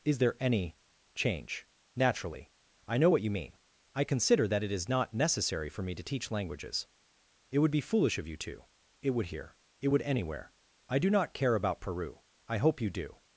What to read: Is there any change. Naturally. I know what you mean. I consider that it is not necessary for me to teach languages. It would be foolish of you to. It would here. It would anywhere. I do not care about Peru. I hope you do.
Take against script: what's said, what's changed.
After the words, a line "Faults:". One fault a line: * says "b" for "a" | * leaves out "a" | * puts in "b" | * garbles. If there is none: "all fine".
Is there any change. Naturally. I know what you mean. I consider that it is not necessary for me to teach languages. It would be foolish of you to. It would here. It would anywhere. I do not care about Peru. I hope you do.
Faults:
all fine